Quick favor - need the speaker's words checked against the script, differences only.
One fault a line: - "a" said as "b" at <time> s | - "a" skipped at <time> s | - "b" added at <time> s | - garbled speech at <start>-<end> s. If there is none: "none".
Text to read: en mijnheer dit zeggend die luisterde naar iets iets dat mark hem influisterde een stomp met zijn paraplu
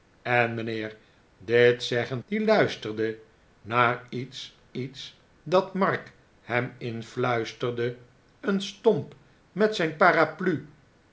none